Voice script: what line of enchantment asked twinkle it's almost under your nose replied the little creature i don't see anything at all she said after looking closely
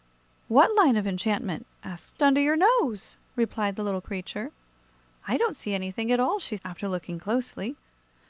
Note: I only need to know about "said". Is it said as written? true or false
false